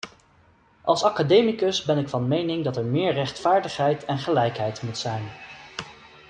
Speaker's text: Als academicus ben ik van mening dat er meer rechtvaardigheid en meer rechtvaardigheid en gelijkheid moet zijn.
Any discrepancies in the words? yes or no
yes